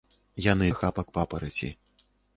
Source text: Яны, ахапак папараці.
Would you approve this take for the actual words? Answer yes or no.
yes